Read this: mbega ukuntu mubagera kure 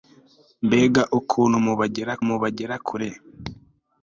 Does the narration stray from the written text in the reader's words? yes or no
yes